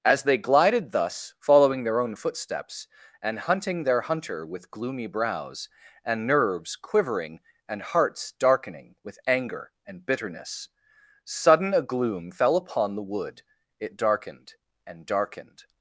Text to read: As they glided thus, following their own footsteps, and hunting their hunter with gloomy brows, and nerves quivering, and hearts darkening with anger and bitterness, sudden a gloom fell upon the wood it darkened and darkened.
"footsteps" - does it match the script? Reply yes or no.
yes